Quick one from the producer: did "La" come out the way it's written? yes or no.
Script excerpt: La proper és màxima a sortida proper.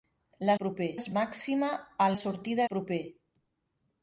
yes